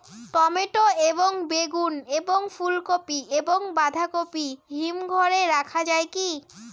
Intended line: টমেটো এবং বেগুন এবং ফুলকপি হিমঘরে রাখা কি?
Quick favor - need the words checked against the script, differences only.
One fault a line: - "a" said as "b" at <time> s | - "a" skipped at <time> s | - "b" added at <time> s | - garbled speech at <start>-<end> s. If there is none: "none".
- "এবং বাঁধাকপি" added at 3.4 s
- "যায়" added at 5.8 s